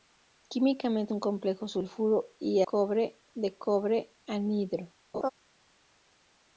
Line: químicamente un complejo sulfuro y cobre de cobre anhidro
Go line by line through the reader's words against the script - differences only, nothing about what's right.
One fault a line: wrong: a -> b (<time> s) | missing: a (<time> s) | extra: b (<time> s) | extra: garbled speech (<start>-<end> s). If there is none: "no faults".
no faults